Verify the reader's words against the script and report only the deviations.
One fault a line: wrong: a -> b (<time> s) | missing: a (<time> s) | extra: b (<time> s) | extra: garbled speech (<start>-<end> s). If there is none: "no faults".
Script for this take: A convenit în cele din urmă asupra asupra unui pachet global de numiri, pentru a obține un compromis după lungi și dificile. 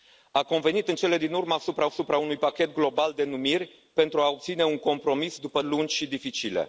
no faults